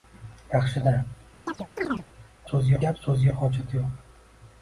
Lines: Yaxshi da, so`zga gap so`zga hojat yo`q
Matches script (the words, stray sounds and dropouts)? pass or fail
fail